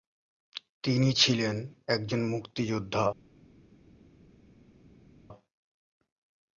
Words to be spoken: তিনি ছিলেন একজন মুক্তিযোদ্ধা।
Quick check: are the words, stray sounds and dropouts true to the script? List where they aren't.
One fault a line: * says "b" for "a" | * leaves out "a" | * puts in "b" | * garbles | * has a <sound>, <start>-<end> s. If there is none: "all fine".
all fine